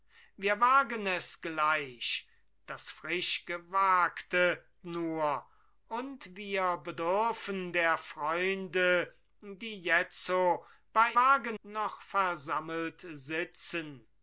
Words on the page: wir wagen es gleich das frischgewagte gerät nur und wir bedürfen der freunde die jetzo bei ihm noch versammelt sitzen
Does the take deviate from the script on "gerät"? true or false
true